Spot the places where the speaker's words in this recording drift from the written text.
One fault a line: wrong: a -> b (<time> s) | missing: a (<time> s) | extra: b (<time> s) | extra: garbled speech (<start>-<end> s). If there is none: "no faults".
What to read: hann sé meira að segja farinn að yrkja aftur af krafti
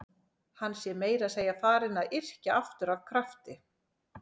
no faults